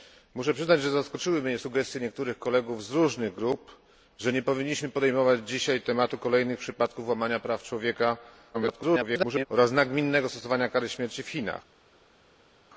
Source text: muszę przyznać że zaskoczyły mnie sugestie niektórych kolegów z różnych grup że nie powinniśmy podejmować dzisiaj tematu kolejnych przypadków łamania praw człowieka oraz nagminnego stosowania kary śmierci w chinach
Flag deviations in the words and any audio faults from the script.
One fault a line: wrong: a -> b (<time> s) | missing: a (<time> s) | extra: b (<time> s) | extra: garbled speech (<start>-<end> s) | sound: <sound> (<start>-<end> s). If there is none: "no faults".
extra: garbled speech (8.5-9.5 s)